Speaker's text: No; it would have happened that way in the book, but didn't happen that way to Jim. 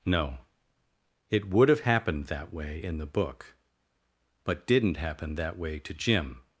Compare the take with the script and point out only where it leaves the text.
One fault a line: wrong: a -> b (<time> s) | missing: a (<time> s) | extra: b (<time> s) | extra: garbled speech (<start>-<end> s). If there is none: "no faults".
no faults